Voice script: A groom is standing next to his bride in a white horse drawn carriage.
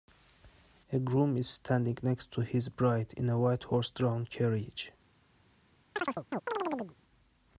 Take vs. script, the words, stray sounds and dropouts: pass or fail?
fail